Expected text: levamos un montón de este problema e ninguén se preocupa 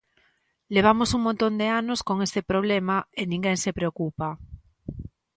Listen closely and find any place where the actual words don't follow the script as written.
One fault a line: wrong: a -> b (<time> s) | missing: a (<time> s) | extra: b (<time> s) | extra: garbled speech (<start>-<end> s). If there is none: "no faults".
extra: anos con (1.7 s)